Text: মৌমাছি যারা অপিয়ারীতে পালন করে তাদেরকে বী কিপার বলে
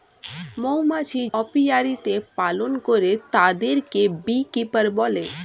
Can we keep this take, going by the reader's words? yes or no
no